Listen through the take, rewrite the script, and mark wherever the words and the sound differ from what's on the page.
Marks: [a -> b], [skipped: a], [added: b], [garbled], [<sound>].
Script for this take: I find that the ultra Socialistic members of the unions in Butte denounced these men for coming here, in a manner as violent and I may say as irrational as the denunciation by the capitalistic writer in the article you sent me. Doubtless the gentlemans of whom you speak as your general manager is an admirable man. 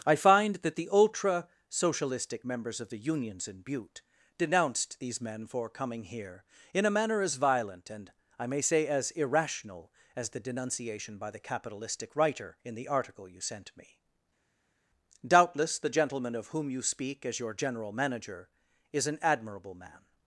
I find that the ultra Socialistic members of the unions in Butte denounced these men for coming here, in a manner as violent and I may say as irrational as the denunciation by the capitalistic writer in the article you sent me. Doubtless the [gentlemans -> gentleman] of whom you speak as your general manager is an admirable man.